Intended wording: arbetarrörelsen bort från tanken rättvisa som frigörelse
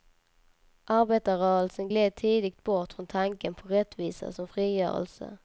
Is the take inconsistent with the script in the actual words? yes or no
yes